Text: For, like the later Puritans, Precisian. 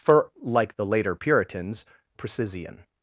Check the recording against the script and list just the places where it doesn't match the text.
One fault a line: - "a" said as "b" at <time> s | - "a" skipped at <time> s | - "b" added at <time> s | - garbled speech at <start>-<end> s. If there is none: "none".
none